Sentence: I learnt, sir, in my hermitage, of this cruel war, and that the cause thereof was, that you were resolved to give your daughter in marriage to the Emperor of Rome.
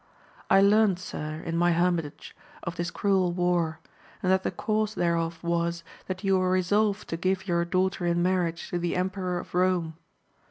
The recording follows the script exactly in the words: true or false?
true